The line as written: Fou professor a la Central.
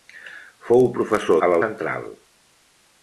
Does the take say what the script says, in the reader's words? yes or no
yes